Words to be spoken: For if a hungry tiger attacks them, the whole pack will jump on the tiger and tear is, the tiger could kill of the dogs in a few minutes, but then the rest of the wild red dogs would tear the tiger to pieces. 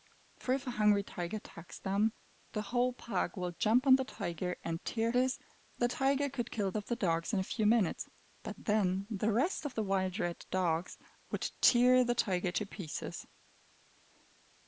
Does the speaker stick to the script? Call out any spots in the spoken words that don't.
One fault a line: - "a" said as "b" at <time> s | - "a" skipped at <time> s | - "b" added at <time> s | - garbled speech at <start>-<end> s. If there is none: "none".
none